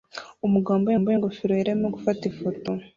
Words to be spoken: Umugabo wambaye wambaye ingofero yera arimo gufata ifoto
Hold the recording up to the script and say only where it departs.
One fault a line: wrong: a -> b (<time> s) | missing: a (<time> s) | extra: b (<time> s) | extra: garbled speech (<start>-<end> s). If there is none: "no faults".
no faults